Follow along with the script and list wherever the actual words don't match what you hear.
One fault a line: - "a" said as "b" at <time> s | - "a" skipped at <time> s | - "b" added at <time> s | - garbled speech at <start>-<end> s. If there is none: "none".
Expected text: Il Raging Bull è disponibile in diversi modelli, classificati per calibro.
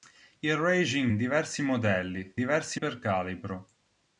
- "Bull è disponibile" skipped at 1.1 s
- "classificati" said as "diversi" at 2.3 s